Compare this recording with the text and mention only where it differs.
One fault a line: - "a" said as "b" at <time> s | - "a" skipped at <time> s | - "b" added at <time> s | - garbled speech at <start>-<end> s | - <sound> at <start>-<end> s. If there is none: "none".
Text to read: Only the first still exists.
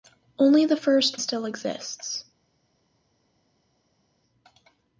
none